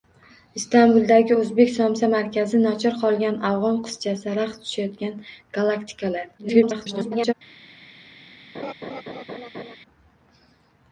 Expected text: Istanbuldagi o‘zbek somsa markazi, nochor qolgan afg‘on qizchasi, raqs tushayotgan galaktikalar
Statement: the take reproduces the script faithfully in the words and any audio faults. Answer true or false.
false